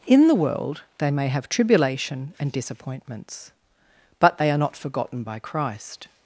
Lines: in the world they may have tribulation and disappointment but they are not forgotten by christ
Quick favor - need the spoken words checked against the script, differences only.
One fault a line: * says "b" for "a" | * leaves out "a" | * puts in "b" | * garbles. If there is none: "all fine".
* says "disappointments" for "disappointment"